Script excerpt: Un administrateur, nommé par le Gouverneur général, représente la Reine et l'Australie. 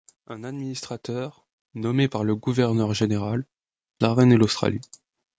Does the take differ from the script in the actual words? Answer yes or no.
yes